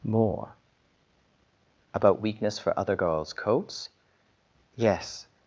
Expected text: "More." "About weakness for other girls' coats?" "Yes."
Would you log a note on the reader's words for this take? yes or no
no